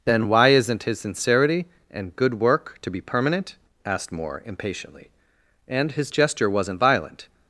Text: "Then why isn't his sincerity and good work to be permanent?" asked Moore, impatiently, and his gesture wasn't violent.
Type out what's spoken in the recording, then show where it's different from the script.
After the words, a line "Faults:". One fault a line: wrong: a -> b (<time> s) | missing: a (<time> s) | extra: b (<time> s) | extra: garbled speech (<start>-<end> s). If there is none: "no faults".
"Then why isn't his sincerity and good work to be permanent?" asked Moore, impatiently, and his gesture wasn't violent.
Faults:
no faults